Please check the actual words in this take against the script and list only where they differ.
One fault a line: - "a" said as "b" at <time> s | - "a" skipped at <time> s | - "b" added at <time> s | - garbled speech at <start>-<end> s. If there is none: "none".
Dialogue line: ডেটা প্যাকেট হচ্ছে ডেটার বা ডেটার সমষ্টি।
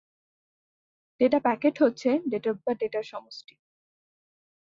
none